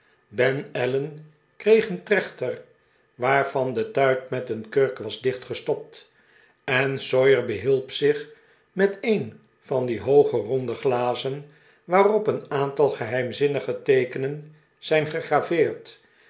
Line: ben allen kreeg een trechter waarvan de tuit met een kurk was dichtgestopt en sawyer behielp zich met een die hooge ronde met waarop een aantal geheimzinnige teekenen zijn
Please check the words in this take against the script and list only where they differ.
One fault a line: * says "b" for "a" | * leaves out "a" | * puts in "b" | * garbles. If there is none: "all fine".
* puts in "van"
* says "glazen" for "met"